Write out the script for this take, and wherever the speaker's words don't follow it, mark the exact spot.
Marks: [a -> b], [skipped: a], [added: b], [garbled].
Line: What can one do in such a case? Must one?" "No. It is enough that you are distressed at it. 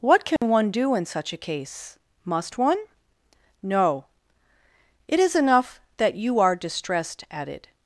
What can one do in such a case? Must one?" "No. It is enough that you are distressed at it.